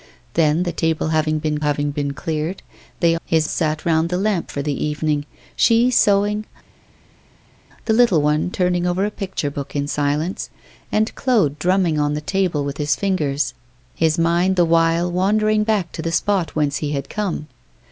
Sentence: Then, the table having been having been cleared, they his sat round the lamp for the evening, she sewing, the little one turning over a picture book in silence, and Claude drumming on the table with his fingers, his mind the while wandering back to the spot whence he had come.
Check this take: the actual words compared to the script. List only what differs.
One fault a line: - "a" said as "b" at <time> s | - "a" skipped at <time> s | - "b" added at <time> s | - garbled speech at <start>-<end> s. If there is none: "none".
none